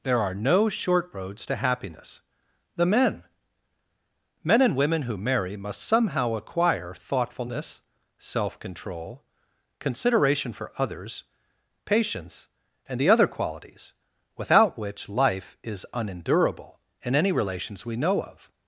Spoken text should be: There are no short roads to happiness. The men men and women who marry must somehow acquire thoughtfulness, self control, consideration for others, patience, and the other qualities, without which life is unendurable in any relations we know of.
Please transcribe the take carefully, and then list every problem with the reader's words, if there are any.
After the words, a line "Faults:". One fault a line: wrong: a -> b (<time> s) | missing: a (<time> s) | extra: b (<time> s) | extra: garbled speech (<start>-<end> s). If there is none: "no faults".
There are no short roads to happiness. The men men and women who marry must somehow acquire thoughtfulness, self control, consideration for others, patience, and the other qualities, without which life is unendurable in any relations we know of.
Faults:
no faults